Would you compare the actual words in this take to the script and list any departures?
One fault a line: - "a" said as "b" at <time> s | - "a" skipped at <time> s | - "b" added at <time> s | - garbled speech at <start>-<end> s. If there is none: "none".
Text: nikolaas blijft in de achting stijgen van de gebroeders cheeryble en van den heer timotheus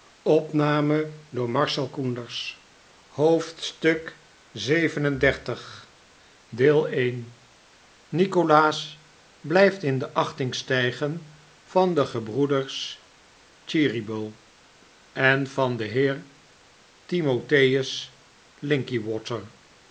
none